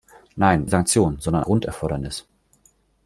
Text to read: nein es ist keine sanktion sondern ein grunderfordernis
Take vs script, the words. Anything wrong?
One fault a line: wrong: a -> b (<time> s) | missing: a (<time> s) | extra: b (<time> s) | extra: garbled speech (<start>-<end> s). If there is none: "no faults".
missing: es ist keine (0.7 s)
missing: ein (1.4 s)